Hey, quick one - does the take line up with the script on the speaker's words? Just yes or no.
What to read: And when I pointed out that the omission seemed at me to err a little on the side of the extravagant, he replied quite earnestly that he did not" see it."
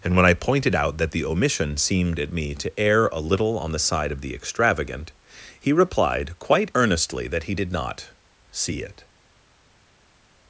yes